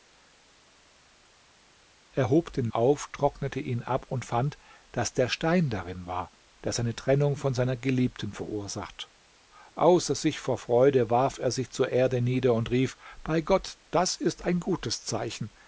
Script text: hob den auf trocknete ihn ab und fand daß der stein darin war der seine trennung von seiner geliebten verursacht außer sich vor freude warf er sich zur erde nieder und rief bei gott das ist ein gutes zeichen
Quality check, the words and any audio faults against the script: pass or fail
pass